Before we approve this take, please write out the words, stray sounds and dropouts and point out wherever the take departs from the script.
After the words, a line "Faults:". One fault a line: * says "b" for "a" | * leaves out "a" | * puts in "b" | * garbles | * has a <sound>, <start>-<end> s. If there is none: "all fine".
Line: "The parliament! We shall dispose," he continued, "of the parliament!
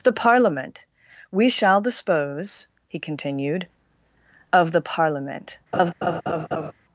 "The parliament! We shall dispose," he continued, "of the parliament!
Faults:
* has a laugh, 5.7-6.7 s